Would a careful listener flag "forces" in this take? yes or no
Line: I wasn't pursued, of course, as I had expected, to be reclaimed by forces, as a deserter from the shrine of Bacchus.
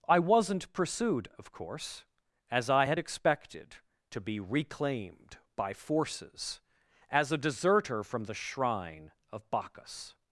no